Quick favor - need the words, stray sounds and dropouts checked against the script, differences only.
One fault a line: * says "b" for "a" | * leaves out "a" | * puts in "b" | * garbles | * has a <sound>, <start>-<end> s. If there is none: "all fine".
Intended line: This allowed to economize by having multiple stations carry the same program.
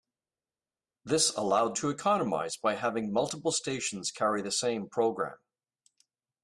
all fine